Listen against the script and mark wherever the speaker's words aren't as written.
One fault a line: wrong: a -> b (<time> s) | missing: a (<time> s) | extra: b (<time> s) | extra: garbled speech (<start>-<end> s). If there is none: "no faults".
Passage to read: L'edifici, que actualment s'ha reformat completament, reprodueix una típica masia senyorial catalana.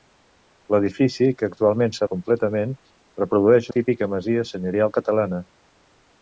missing: reformat (2.1 s)
missing: una (3.7 s)